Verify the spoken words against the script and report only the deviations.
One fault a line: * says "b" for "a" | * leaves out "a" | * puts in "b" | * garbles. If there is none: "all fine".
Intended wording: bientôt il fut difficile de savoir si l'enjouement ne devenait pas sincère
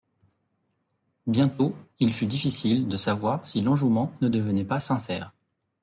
all fine